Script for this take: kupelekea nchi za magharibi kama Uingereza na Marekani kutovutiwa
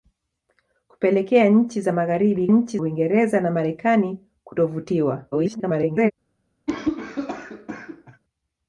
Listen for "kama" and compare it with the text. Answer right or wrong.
wrong